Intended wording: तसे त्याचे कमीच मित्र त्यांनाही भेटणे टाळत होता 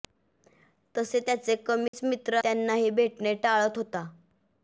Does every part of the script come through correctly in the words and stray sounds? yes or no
no